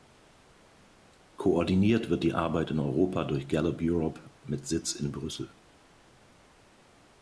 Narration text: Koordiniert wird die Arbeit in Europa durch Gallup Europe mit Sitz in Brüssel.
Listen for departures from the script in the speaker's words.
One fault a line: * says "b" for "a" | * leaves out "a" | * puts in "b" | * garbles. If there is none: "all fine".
all fine